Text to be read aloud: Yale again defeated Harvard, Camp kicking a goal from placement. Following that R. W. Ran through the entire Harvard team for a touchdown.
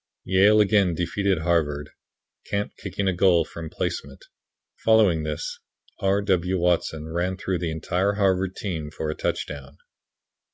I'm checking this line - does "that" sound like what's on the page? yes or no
no